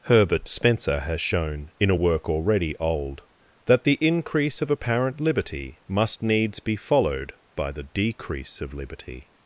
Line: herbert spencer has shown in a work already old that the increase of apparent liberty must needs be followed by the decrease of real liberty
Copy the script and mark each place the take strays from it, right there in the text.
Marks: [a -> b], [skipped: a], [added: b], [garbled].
herbert spencer has shown in a work already old that the increase of apparent liberty must needs be followed by the decrease of [skipped: real] liberty